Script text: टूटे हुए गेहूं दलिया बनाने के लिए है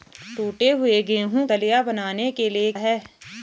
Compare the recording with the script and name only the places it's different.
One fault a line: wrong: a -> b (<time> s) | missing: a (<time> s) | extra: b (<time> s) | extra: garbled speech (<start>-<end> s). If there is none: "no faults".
no faults